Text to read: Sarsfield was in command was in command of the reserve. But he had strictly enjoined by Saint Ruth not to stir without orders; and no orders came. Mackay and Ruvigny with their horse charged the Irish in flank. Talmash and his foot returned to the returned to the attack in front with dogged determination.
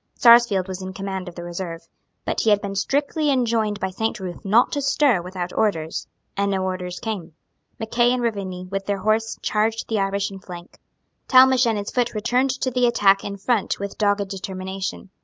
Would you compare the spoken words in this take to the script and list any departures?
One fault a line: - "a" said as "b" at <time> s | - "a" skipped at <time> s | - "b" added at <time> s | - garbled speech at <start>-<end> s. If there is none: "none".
- "was in command" skipped at 1.3 s
- "been" added at 2.6 s
- "returned to the" skipped at 12.9 s